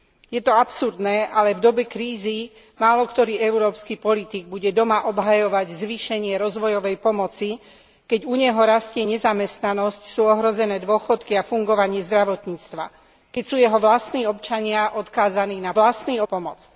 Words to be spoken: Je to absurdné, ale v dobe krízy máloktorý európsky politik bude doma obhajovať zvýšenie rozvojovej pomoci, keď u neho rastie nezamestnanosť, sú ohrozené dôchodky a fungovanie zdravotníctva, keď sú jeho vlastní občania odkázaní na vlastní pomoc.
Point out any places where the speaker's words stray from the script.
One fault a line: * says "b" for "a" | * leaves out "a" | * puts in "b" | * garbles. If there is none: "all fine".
all fine